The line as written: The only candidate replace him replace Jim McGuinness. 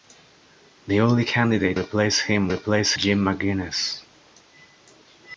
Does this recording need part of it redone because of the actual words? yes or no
no